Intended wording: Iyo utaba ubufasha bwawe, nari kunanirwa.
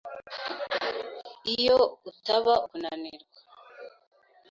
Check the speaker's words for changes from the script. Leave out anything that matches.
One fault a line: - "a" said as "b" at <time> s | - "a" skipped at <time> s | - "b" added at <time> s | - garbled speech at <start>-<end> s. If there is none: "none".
- "ubufasha bwawe nari" skipped at 2.5 s